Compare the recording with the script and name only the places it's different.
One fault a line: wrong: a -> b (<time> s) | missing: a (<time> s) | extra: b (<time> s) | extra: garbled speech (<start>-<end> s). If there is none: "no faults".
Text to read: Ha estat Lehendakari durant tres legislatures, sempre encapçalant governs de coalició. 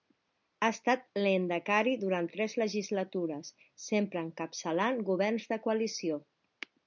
no faults